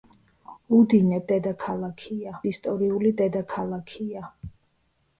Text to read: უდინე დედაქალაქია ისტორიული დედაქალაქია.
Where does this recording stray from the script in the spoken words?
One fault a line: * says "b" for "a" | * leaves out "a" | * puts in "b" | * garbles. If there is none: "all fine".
all fine